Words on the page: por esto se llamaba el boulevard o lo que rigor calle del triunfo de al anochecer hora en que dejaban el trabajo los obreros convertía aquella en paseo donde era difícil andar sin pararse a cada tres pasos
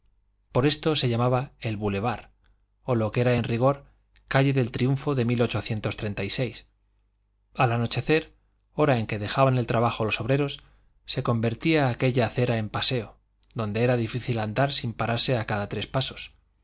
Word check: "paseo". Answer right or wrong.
right